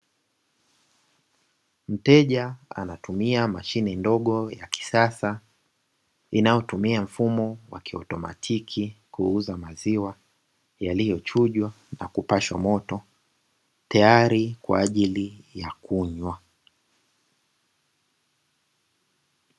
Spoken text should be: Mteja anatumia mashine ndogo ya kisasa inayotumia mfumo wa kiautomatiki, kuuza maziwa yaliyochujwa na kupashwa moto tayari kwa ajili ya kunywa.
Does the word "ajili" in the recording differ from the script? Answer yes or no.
no